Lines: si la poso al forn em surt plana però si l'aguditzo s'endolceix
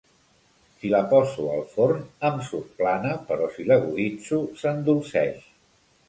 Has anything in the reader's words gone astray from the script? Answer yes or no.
no